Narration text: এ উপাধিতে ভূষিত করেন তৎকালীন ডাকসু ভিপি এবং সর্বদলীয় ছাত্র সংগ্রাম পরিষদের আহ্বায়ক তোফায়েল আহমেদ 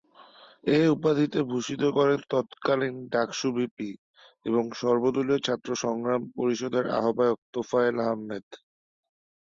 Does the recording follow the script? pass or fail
pass